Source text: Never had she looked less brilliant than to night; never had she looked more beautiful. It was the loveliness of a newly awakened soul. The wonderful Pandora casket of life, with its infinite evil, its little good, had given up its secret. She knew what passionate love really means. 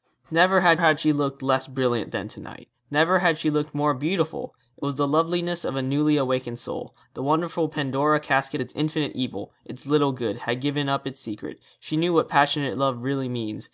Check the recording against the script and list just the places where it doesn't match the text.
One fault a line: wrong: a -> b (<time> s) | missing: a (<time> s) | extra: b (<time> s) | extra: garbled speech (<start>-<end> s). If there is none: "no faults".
extra: had (0.8 s)
missing: of life with (8.6 s)